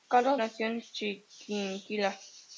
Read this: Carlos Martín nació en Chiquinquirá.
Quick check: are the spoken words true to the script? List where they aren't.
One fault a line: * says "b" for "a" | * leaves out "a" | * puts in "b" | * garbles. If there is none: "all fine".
* leaves out "Martín"